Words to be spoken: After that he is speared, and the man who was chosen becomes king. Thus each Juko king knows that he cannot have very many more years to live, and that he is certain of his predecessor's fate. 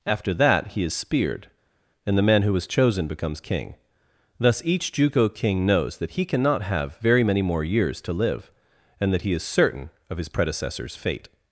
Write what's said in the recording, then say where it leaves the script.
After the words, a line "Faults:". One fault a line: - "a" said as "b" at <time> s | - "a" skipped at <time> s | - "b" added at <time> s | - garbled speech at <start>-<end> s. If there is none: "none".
After that he is speared, and the man who was chosen becomes king. Thus each Juko king knows that he cannot have very many more years to live, and that he is certain of his predecessor's fate.
Faults:
none